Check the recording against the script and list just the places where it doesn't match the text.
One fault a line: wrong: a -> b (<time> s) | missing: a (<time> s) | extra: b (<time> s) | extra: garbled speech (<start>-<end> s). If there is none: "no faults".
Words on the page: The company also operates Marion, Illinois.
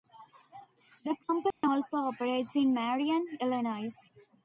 extra: in (2.5 s)